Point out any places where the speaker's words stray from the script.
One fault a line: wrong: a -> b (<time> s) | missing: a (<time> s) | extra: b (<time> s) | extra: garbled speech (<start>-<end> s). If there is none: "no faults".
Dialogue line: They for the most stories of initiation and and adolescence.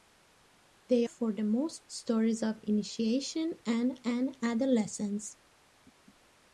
no faults